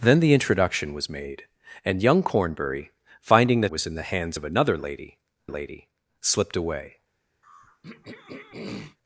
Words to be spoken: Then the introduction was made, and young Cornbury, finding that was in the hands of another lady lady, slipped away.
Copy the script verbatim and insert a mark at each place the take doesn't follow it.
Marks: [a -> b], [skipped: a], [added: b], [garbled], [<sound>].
Then the introduction was made, and young Cornbury, finding that was in the hands of another lady lady, slipped away. [throat clearing]